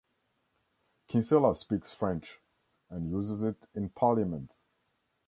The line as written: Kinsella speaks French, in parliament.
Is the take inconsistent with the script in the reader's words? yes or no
yes